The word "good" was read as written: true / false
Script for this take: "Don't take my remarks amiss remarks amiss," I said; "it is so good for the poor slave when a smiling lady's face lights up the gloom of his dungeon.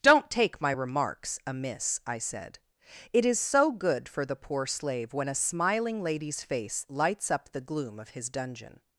true